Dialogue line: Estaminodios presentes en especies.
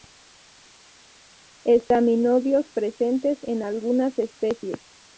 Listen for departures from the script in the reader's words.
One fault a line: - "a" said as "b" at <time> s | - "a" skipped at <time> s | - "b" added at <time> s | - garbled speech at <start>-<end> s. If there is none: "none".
- "algunas" added at 3.6 s